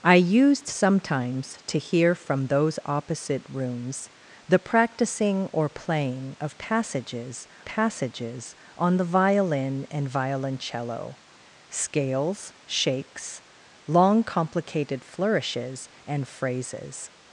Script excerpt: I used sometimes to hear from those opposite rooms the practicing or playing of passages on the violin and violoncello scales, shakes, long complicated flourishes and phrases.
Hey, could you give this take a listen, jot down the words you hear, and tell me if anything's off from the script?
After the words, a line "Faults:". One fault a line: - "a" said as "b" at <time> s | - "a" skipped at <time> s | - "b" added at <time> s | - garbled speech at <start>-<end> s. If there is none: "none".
I used sometimes to hear from those opposite rooms the practicing or playing of passages passages on the violin and violoncello scales, shakes, long complicated flourishes and phrases.
Faults:
- "passages" added at 7.6 s